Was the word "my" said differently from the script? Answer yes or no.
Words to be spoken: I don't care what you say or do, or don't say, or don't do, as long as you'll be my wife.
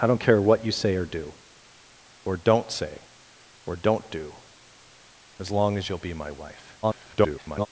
no